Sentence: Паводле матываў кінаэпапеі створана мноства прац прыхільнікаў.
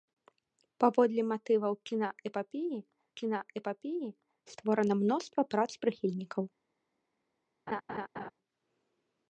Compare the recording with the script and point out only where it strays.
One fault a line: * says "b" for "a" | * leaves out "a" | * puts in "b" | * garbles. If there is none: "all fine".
* puts in "кінаэпапеі"